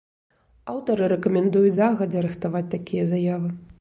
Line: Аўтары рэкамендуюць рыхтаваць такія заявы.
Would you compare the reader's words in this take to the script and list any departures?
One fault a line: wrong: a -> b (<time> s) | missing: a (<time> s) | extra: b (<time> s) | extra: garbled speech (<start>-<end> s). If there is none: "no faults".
extra: загадзя (1.8 s)